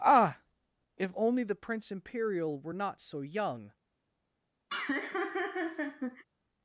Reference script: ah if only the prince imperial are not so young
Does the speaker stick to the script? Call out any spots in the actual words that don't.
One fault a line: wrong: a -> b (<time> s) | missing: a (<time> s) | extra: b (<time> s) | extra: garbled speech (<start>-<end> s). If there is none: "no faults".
wrong: are -> were (2.6 s)